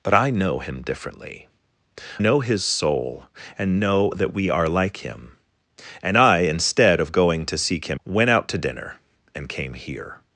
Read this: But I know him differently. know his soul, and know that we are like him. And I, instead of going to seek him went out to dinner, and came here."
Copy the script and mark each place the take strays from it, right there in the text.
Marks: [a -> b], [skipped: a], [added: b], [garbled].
But I know him differently. know his soul, and know that we are like him. And I, instead of going to seek him went out to dinner, and came here."